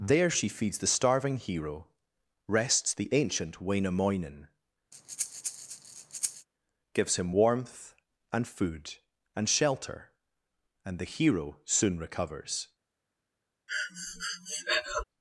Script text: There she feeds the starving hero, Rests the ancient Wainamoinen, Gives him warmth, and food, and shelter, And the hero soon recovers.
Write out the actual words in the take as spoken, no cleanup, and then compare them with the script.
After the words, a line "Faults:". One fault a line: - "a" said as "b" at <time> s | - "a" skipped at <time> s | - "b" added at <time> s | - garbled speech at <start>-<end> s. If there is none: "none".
There she feeds the starving hero, Rests the ancient Wainamoinen, Gives him warmth, and food, and shelter, And the hero soon recovers.
Faults:
none